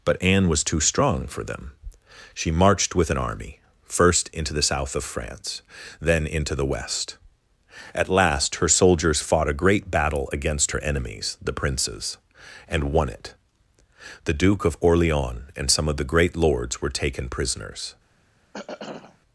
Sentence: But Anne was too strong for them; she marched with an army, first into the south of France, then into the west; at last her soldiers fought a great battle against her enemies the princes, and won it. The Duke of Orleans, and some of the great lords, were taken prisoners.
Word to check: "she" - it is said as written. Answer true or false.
true